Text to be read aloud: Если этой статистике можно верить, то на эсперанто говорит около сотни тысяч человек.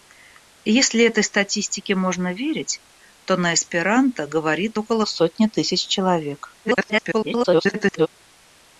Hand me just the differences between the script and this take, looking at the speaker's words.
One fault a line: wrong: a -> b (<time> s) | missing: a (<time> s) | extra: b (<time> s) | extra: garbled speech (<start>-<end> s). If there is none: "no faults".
extra: garbled speech (6.6-8.1 s)